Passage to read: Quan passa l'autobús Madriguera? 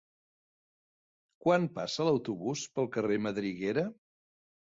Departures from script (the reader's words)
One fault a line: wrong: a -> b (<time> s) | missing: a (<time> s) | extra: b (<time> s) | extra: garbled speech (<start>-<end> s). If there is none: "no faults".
extra: pel carrer (2.8 s)